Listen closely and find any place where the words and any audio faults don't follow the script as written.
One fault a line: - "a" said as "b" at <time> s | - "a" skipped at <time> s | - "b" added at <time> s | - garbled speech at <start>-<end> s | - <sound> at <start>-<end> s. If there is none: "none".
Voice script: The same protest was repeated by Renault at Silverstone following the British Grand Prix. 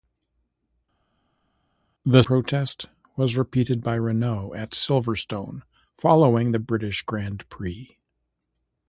- "same" skipped at 2.2 s